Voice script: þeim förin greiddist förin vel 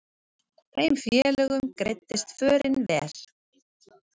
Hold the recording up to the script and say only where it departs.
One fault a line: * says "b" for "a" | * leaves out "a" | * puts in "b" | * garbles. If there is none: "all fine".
* says "félögum" for "förin"